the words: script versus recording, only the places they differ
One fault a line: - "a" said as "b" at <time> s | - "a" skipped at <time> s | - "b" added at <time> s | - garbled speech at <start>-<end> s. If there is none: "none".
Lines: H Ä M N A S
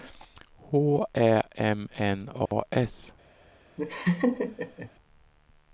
none